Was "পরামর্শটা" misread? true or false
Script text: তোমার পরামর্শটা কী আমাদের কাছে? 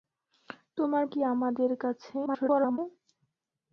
true